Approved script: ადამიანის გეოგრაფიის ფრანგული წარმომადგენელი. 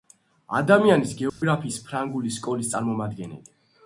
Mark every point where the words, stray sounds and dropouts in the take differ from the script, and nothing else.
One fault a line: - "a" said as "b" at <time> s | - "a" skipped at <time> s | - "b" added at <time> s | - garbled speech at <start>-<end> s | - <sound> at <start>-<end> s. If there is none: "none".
- dropout at 1.3-1.4 s
- "სკოლის" added at 2.4 s